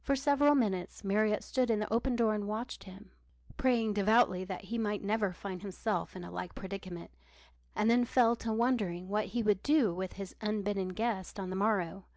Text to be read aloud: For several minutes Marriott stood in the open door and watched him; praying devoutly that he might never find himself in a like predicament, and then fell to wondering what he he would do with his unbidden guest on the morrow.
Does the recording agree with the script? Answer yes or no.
no